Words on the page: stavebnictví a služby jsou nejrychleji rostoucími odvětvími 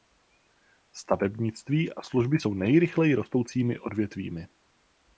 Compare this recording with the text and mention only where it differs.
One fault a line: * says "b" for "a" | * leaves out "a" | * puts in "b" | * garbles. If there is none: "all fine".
all fine